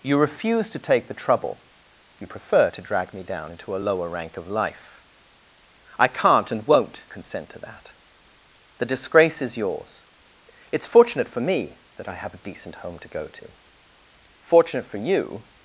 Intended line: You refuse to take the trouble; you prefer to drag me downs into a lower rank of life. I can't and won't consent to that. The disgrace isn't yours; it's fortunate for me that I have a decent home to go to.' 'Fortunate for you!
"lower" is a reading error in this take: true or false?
false